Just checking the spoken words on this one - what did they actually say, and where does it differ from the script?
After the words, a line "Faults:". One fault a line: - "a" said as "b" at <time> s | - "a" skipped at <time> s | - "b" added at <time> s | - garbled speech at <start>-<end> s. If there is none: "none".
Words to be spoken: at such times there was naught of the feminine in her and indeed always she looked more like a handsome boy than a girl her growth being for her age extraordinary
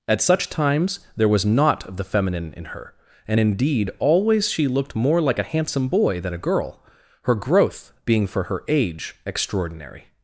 at such times there was naught of the feminine in her and indeed always she looked more like a handsome boy than a girl her growth being for her age extraordinary
Faults:
none